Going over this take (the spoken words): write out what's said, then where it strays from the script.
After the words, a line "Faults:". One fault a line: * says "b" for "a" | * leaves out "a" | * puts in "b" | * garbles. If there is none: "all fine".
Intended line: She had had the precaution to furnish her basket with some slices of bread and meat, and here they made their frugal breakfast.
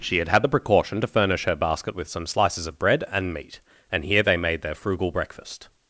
She had had the precaution to furnish her basket with some slices of bread and meat, and here they made their frugal breakfast.
Faults:
all fine